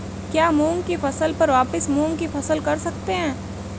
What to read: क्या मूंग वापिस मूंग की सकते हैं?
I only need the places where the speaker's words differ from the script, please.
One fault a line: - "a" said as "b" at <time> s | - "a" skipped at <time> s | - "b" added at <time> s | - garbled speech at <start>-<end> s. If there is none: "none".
- "की फसल पर" added at 0.8 s
- "फसल कर" added at 2.3 s